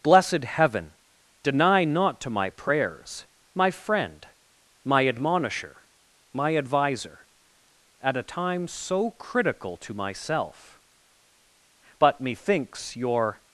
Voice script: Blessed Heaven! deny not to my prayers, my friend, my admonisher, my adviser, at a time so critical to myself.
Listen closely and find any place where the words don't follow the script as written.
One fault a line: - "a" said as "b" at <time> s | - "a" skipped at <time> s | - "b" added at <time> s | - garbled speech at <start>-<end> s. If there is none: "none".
- "But methinks your" added at 12.0 s